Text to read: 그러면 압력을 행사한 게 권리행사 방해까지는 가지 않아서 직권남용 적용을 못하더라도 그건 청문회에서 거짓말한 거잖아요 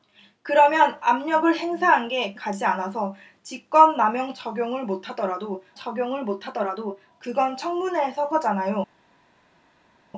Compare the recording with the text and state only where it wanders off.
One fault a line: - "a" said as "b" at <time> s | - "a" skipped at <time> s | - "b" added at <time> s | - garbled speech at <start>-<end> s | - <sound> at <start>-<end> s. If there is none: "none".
- "권리행사 방해까지는" skipped at 2.3 s
- "적용을 못하더라도" added at 5.8 s
- "거짓말한" skipped at 8.3 s